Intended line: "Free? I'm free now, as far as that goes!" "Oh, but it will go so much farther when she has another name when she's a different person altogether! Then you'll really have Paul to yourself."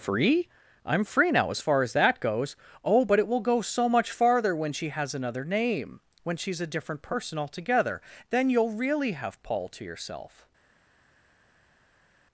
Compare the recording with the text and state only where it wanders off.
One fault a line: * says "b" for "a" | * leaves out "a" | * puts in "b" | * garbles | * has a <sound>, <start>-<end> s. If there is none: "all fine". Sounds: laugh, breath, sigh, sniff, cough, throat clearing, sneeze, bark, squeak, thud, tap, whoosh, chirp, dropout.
all fine